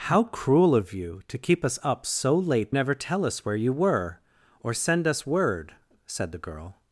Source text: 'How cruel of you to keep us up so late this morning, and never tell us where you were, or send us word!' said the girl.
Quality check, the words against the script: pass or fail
fail